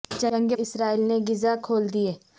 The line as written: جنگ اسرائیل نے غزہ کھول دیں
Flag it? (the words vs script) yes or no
no